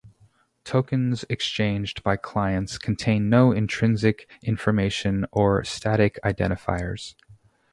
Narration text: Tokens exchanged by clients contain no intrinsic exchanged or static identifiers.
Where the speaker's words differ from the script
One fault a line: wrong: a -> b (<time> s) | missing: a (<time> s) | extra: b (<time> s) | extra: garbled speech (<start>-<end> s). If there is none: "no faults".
wrong: exchanged -> information (4.4 s)